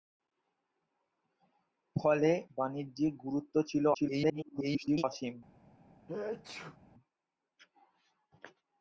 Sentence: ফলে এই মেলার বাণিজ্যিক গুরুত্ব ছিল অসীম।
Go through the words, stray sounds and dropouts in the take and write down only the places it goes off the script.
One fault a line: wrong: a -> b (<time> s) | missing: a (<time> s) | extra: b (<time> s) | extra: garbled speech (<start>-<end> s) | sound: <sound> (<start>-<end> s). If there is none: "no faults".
missing: এই মেলার (2.3 s)
extra: garbled speech (3.9-5.0 s)
sound: sneeze (6.1-6.8 s)